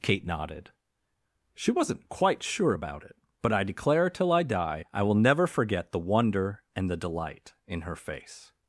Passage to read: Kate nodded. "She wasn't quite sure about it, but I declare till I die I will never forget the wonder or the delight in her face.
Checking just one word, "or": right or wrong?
wrong